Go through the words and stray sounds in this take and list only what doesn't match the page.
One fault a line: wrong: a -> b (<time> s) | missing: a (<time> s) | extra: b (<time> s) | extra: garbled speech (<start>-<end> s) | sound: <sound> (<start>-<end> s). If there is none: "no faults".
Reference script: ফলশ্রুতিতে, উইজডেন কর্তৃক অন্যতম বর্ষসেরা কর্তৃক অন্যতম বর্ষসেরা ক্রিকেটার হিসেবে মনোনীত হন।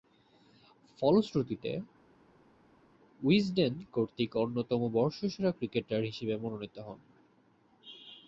missing: কর্তৃক অন্যতম বর্ষসেরা (5.5 s)